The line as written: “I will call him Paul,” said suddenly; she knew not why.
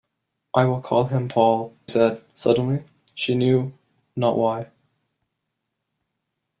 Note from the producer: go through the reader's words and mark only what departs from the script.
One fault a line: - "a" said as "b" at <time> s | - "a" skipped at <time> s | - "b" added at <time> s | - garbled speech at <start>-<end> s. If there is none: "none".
none